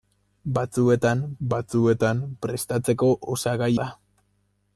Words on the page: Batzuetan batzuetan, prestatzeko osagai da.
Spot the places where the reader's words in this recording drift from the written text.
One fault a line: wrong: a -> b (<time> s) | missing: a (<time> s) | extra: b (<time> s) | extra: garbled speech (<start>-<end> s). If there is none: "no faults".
no faults